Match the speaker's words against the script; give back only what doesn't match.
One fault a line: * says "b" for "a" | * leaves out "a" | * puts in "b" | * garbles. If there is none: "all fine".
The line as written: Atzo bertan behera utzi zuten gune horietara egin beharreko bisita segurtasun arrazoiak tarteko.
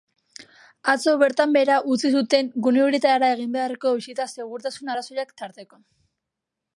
all fine